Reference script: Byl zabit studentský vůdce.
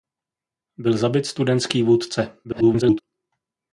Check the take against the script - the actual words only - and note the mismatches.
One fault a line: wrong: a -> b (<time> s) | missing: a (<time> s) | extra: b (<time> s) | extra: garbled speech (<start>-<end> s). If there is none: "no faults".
extra: garbled speech (2.4-3.0 s)